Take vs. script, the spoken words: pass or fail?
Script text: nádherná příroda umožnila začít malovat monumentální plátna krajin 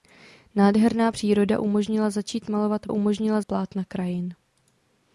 fail